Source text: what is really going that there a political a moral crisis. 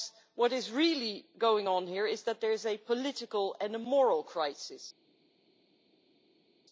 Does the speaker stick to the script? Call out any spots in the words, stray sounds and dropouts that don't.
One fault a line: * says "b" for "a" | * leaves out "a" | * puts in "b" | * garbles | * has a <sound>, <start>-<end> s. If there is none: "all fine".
* puts in "on here is"
* puts in "is"
* puts in "and"